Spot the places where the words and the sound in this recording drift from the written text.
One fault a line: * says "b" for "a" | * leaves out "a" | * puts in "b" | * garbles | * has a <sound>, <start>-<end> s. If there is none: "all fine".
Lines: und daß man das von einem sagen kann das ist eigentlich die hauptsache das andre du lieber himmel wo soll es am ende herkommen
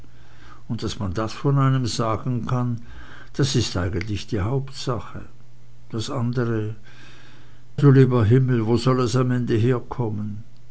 all fine